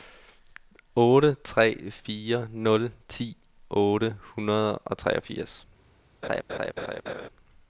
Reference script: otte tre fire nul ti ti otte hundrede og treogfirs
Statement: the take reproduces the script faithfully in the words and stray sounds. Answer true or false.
false